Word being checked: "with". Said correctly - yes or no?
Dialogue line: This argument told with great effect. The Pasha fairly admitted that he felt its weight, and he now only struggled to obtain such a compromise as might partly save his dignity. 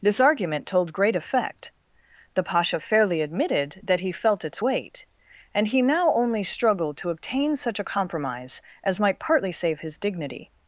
no